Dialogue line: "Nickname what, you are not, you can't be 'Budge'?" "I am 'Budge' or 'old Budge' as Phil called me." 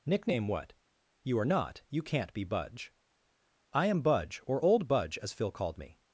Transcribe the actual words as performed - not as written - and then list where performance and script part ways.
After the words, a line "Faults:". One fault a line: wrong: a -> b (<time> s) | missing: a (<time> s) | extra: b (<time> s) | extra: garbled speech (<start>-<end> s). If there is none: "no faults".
"Nickname what, you are not, you can't be 'Budge'?" "I am 'Budge' or 'old Budge' as Phil called me."
Faults:
no faults